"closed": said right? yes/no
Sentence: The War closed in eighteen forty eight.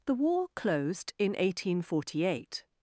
yes